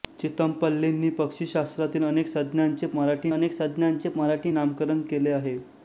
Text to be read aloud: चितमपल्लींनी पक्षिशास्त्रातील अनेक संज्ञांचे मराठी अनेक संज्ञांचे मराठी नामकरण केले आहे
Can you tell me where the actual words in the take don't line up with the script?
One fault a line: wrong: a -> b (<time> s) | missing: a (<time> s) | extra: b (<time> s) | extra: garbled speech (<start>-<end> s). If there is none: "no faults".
no faults